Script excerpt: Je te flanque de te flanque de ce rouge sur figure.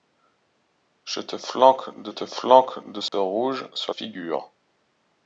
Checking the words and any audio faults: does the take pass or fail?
fail